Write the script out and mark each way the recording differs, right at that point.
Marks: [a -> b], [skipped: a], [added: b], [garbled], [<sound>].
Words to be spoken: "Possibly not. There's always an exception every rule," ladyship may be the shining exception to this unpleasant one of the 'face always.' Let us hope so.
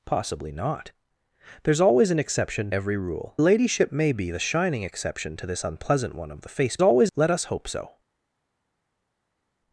"Possibly not. There's always an exception every rule," ladyship may be the shining exception to this unpleasant one of the 'face always.' Let us hope so.